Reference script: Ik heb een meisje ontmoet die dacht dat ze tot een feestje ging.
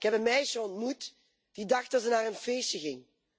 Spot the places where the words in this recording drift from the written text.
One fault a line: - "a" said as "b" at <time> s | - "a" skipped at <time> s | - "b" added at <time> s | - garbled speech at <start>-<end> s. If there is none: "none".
- "tot" said as "naar" at 2.1 s